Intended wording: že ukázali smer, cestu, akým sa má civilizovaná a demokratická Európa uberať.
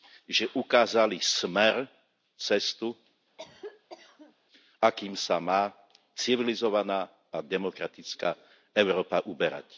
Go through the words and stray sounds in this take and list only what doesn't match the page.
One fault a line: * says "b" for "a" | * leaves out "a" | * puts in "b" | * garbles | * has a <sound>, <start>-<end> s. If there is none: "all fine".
* has a cough, 3.4-4.4 s